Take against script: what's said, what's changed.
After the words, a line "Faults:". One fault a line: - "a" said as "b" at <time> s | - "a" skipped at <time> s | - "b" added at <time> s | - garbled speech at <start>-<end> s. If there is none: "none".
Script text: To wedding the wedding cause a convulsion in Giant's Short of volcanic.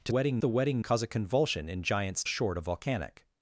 To wedding the wedding cause a convulsion in Giant's Short of volcanic.
Faults:
none